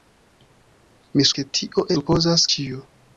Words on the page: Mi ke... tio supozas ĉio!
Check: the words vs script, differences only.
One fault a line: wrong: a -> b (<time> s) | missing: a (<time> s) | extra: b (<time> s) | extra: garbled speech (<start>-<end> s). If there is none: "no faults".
no faults